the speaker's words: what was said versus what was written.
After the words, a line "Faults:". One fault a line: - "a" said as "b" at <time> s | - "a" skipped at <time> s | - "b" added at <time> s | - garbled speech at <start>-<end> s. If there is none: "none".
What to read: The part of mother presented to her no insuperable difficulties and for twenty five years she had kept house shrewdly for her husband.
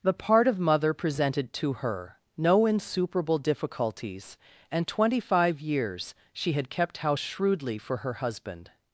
The part of mother presented to her no insuperable difficulties and twenty five years she had kept house shrewdly for her husband.
Faults:
- "for" skipped at 4.9 s